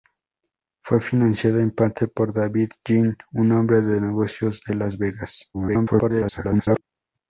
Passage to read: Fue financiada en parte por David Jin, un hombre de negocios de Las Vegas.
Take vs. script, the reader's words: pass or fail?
fail